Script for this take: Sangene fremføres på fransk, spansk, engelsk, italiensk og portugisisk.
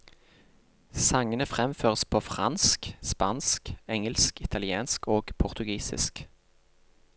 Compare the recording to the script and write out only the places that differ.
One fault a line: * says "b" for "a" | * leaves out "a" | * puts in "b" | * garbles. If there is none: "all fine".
all fine